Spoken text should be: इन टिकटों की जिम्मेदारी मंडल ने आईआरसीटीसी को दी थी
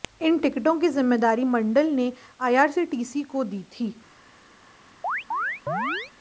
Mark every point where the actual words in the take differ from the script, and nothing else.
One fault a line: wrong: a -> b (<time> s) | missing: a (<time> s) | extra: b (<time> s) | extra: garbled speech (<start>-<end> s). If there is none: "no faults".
no faults